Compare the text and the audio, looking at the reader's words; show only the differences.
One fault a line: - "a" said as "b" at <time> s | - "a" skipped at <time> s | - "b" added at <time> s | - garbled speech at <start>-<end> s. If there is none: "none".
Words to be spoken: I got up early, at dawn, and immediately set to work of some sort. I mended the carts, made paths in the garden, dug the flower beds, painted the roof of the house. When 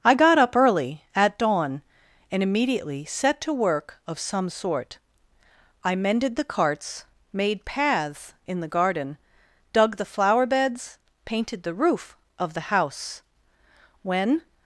none